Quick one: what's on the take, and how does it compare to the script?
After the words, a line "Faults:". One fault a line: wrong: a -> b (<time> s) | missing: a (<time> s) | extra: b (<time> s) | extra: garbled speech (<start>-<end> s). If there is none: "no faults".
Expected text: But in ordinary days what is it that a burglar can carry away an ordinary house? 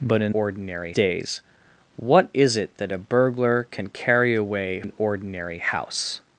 But in ordinary days what is it that a burglar can carry away an ordinary house?
Faults:
no faults